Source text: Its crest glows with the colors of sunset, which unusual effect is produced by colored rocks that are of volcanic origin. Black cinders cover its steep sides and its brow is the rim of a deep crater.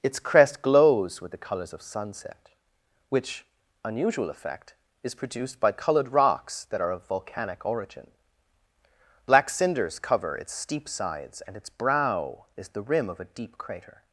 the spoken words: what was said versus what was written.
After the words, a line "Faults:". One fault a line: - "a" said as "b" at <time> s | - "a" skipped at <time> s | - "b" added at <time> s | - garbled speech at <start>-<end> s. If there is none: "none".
Its crest glows with the colors of sunset, which unusual effect is produced by colored rocks that are of volcanic origin. Black cinders cover its steep sides and its brow is the rim of a deep crater.
Faults:
none